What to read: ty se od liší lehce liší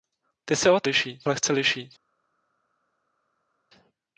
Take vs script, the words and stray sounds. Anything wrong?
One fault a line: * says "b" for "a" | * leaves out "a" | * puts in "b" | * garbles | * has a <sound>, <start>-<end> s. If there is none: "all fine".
all fine